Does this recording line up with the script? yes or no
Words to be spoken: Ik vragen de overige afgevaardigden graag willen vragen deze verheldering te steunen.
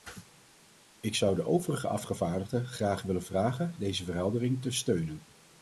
no